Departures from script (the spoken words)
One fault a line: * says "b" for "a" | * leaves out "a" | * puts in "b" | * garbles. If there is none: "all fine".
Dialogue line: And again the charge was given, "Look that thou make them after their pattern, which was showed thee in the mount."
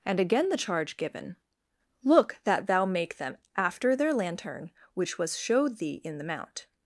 * leaves out "was"
* says "lantern" for "pattern"